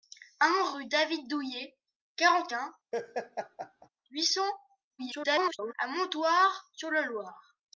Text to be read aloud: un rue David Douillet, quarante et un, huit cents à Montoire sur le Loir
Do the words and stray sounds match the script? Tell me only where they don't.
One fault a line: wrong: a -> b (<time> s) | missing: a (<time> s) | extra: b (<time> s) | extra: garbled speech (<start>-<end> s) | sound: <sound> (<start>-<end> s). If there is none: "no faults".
missing: et (2.5 s)
sound: laugh (2.9-3.9 s)
extra: garbled speech (5.0-5.7 s)